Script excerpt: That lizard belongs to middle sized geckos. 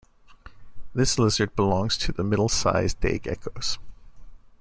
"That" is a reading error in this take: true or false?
true